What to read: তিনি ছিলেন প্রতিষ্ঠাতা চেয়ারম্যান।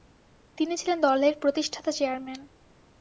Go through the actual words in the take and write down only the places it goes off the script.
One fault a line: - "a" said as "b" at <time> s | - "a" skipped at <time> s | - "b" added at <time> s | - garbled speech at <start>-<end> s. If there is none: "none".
- "দলের" added at 1.0 s